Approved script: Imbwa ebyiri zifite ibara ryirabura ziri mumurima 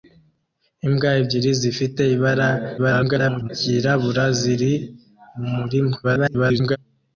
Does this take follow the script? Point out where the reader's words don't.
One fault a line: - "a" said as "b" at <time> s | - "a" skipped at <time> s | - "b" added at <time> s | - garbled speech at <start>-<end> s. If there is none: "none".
- garbled speech at 2.8-3.5 s
- garbled speech at 6.0-6.8 s